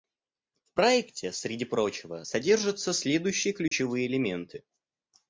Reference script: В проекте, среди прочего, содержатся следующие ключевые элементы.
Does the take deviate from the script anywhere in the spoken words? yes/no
no